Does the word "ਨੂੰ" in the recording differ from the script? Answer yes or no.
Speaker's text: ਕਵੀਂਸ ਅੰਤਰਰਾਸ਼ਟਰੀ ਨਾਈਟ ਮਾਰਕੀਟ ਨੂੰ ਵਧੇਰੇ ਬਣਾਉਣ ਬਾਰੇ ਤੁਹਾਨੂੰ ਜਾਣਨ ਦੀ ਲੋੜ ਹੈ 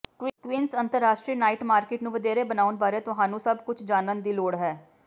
no